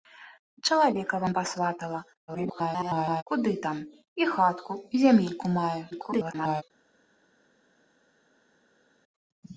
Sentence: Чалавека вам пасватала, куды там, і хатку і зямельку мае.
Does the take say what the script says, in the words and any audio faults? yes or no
no